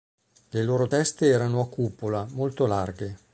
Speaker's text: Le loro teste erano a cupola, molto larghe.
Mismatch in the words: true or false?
false